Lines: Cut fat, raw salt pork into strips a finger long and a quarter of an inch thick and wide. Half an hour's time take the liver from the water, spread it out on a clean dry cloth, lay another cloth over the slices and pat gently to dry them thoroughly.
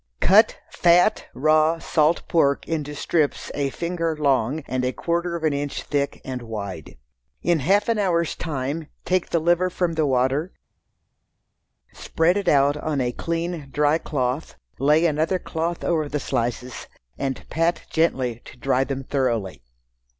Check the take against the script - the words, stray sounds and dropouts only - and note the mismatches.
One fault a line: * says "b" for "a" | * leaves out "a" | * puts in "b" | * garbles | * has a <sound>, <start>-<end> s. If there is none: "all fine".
* puts in "In"